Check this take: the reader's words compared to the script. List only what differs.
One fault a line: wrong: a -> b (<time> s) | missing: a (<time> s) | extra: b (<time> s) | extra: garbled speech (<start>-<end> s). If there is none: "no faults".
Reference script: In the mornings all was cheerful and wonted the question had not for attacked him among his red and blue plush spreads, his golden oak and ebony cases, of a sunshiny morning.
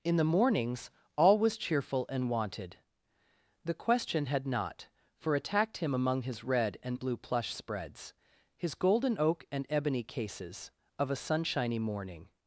no faults